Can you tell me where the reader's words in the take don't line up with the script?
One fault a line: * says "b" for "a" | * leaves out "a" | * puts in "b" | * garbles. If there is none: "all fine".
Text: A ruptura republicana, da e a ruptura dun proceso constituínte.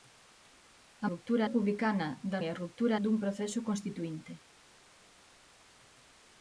all fine